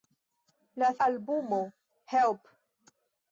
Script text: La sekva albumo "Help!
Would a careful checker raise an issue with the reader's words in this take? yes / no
yes